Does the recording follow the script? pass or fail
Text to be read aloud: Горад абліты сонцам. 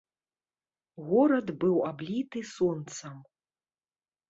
fail